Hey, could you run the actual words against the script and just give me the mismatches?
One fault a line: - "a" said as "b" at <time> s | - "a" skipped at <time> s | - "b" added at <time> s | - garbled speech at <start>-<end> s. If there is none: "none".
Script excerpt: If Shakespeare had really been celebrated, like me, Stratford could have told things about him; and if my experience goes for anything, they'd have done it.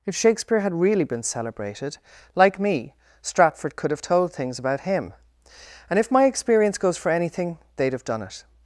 none